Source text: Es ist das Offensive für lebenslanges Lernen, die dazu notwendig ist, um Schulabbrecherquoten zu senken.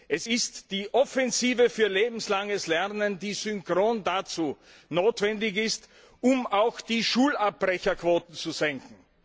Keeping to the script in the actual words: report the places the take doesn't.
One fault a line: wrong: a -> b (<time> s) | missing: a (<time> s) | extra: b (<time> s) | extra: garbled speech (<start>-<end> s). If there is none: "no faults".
wrong: das -> die (0.7 s)
extra: synchron (3.3 s)
extra: auch die (6.5 s)